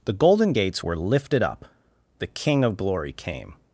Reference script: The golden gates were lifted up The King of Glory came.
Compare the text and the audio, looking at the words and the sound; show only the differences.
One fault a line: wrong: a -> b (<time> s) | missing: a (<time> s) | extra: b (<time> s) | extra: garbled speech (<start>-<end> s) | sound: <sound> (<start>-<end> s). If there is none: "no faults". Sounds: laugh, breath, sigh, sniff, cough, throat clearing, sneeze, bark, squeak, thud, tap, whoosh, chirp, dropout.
no faults